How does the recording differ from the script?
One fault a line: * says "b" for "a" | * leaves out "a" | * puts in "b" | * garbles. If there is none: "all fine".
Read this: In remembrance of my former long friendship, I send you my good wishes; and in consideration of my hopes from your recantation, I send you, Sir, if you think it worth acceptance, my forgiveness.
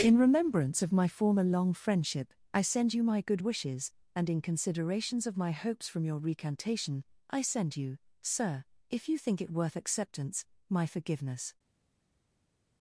* says "considerations" for "consideration"